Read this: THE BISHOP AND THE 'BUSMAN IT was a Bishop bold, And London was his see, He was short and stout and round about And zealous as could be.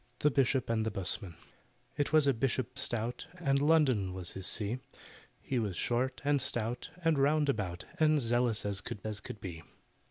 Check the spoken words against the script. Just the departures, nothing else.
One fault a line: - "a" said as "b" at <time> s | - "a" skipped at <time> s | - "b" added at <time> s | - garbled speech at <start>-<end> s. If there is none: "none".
- "bold" said as "stout" at 2.8 s
- "as could" added at 9.0 s